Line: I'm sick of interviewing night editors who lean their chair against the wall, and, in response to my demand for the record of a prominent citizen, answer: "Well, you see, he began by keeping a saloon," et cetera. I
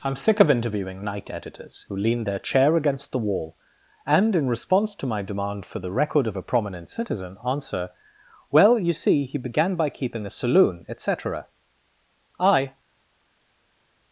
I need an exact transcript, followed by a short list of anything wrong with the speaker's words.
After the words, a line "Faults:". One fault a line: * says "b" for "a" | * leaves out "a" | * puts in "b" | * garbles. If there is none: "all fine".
I'm sick of interviewing night editors who lean their chair against the wall, and, in response to my demand for the record of a prominent citizen, answer: "Well, you see, he began by keeping a saloon," et cetera. I
Faults:
all fine